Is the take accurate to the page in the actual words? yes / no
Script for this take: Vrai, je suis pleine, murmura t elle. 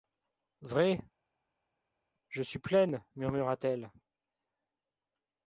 yes